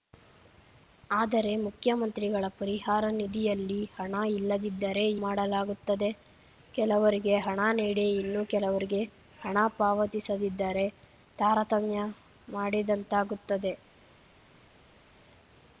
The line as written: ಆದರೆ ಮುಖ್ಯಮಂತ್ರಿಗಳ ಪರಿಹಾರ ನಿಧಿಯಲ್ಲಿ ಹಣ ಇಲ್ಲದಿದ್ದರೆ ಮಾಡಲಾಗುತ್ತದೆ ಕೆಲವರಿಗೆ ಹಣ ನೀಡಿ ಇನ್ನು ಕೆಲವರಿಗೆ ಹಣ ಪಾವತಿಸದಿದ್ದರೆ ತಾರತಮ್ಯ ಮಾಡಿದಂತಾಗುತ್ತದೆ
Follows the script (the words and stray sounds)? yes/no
yes